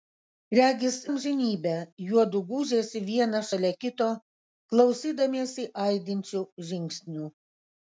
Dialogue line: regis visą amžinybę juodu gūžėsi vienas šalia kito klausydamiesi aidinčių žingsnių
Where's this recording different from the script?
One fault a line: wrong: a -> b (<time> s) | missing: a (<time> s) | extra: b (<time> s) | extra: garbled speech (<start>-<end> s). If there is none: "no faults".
missing: visą (0.9 s)